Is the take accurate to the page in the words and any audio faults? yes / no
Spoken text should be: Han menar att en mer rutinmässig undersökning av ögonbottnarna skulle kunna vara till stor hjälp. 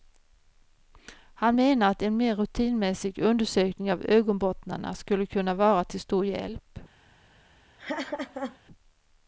no